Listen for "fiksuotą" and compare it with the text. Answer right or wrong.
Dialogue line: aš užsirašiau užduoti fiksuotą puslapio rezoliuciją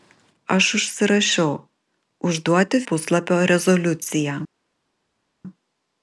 wrong